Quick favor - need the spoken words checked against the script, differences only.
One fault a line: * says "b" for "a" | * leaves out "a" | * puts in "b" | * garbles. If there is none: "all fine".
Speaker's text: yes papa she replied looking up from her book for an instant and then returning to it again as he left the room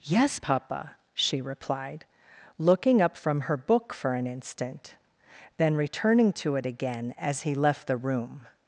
* leaves out "and"